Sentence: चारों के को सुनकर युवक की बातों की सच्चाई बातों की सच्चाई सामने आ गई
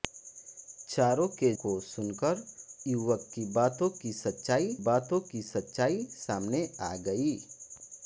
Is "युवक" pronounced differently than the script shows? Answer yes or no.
no